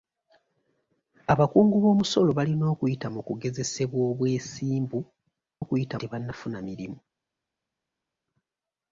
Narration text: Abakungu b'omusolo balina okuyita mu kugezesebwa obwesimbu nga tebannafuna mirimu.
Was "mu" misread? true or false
false